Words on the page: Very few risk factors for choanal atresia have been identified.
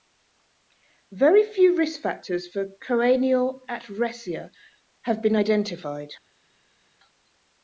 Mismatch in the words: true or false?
false